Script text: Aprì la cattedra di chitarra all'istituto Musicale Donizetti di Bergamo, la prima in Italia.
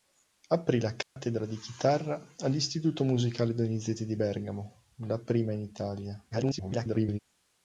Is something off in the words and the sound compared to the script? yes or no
yes